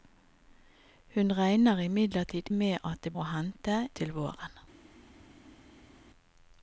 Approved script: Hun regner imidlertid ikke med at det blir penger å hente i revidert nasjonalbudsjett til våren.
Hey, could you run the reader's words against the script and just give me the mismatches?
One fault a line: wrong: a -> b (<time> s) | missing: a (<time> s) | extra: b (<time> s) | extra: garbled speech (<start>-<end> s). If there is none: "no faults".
missing: ikke (2.5 s)
missing: blir penger (3.1 s)
missing: i revidert nasjonalbudsjett (3.8 s)